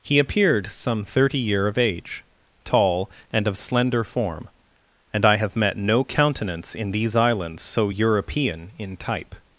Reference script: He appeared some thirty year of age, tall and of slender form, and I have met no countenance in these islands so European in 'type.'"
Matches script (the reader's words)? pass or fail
pass